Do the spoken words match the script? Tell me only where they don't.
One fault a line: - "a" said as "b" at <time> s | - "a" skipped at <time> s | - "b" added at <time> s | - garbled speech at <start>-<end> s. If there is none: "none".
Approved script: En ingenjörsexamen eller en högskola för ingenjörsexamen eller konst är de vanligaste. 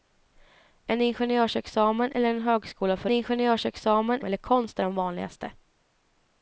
none